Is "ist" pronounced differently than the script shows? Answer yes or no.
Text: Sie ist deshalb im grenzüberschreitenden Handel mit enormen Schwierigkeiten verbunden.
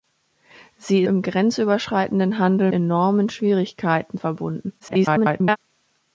yes